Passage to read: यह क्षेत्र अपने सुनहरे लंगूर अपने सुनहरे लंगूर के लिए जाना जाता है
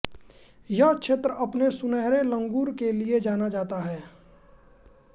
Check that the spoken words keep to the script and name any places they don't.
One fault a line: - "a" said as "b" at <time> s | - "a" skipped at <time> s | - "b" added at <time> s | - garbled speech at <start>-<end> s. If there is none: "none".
- "अपने सुनहरे लंगूर" skipped at 2.7 s